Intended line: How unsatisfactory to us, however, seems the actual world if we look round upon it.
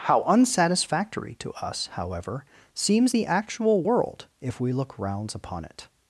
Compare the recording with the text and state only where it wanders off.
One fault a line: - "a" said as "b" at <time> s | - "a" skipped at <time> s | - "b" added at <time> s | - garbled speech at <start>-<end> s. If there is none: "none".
- "round" said as "rounds" at 5.0 s